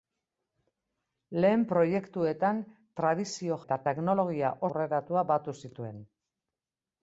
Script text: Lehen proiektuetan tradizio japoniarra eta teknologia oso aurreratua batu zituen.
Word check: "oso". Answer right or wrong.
wrong